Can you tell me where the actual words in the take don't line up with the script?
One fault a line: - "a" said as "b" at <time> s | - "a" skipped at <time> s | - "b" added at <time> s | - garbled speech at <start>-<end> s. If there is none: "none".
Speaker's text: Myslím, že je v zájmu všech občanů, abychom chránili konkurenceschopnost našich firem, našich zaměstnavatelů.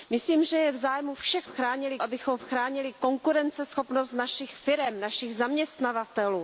- "občanů" said as "chránili" at 1.4 s